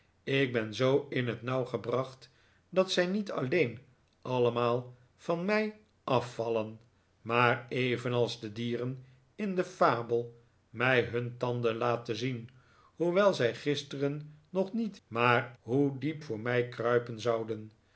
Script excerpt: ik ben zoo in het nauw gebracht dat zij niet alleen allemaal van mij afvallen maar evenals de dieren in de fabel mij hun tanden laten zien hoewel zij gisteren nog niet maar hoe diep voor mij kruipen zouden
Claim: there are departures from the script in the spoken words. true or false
false